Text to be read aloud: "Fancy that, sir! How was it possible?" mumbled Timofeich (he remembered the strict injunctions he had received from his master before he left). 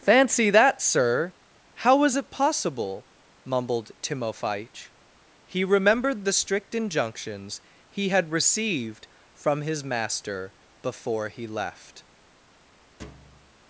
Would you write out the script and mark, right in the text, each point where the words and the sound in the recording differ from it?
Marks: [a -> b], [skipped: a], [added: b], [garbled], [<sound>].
"Fancy that, sir! How was it possible?" mumbled Timofeich (he remembered the strict injunctions he had received from his master before he left). [thud]